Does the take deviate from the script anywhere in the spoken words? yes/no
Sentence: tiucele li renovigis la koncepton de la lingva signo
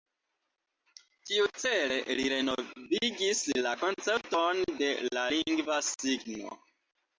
no